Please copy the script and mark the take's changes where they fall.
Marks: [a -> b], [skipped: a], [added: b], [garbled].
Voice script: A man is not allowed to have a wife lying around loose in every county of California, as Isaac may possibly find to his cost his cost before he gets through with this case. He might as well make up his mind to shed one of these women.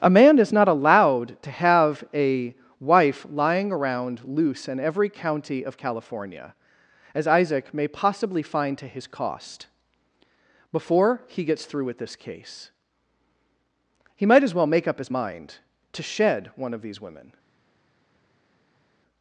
A man is not allowed to have a wife lying around loose in every county of California, as Isaac may possibly find to his cost [skipped: his cost] before he gets through with this case. He might as well make up his mind to shed one of these women.